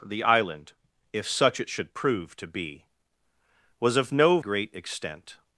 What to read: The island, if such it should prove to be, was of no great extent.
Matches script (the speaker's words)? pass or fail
pass